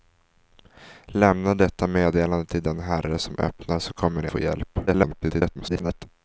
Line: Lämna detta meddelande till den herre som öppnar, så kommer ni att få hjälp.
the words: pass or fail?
fail